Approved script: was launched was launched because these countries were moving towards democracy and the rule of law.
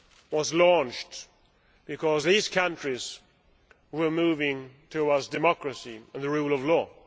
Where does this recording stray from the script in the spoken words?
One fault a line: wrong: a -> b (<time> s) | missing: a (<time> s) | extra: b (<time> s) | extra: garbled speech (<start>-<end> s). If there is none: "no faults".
missing: was launched (1.3 s)